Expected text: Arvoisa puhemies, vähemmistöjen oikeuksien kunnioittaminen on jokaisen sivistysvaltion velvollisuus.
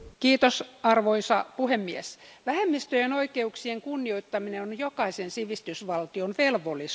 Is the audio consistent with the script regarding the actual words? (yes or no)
yes